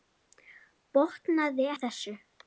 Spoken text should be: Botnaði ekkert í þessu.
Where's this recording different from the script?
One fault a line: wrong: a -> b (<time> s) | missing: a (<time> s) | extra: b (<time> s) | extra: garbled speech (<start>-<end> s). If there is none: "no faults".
missing: ekkert (1.7 s)